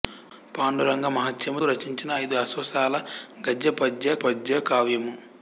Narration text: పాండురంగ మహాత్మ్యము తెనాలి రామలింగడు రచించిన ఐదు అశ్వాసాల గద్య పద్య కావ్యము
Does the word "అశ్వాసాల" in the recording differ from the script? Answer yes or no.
no